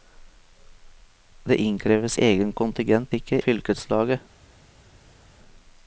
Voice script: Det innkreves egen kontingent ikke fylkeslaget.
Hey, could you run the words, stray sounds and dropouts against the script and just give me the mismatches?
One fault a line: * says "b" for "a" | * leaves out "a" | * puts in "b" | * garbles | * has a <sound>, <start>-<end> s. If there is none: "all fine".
all fine